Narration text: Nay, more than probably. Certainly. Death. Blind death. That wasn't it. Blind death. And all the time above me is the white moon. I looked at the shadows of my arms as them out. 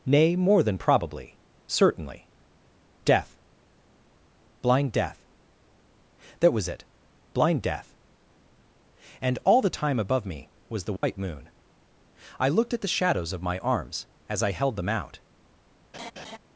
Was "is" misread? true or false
true